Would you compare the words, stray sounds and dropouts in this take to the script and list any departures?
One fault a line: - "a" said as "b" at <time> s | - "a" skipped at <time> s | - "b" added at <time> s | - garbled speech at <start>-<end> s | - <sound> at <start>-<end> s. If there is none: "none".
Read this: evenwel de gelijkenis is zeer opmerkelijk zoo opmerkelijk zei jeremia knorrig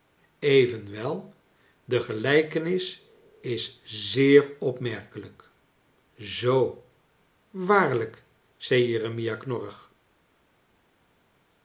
- "opmerkelijk" said as "waarlijk" at 7.5 s